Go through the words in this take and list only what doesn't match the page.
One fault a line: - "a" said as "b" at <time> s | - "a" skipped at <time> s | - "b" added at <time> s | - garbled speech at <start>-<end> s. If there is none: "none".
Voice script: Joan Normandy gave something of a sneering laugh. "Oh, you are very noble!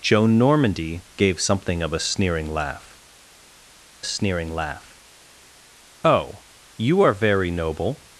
- "sneering laugh" added at 4.0 s